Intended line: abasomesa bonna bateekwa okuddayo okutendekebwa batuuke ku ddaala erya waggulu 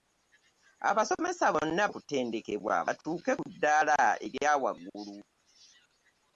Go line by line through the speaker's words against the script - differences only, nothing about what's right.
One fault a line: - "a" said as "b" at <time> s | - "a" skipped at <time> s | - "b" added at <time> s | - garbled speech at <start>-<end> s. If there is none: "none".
- "bateekwa okuddayo" skipped at 1.8 s